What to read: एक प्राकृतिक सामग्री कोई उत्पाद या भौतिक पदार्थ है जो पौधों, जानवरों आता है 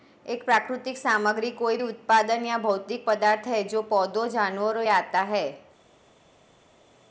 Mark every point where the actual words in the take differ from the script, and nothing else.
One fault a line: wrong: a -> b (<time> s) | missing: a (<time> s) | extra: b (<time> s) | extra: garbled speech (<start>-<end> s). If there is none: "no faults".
no faults